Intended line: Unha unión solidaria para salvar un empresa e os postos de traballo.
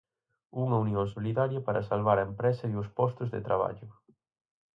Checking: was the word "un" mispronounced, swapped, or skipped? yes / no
yes